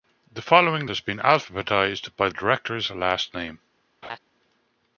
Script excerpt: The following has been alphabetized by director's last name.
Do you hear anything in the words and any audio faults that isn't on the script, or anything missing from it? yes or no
yes